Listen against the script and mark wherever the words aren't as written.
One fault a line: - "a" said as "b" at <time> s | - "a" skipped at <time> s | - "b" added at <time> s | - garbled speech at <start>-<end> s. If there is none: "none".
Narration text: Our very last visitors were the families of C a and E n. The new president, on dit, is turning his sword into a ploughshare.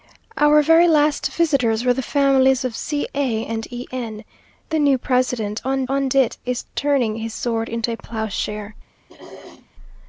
- "on" added at 5.9 s